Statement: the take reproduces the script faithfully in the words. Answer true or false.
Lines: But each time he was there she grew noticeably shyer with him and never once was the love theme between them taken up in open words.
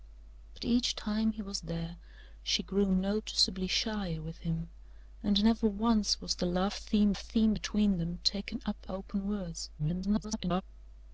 false